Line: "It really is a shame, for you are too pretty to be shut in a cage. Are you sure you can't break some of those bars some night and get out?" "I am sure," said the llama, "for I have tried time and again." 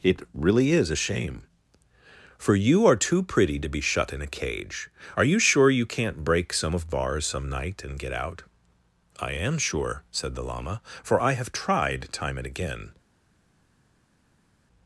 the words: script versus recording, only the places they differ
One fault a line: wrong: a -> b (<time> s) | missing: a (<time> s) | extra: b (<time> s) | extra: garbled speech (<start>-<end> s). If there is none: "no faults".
missing: those (6.9 s)